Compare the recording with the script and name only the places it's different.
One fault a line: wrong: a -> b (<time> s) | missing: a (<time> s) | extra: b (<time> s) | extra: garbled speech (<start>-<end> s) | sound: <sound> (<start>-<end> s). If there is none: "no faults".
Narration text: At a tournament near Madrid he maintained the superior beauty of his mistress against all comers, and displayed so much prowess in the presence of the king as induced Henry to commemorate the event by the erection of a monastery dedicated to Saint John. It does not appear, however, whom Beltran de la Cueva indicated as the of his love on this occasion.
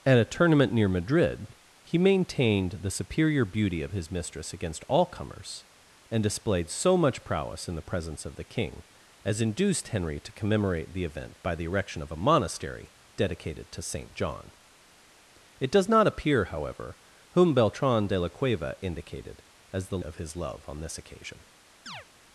sound: chirp (21.9-22.1 s)